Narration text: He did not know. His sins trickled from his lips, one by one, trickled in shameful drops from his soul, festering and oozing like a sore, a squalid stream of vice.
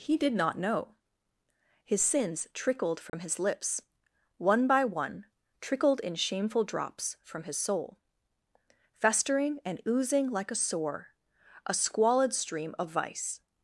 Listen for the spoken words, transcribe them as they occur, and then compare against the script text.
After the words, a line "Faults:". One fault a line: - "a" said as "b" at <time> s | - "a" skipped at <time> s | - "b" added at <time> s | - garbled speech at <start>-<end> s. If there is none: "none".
He did not know. His sins trickled from his lips, one by one, trickled in shameful drops from his soul, festering and oozing like a sore, a squalid stream of vice.
Faults:
none